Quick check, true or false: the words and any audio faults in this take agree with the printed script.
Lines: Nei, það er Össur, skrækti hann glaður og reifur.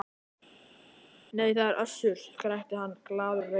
true